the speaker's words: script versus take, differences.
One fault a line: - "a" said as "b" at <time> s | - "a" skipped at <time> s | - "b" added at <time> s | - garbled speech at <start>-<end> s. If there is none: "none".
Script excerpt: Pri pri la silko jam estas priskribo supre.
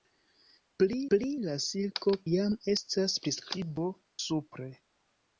none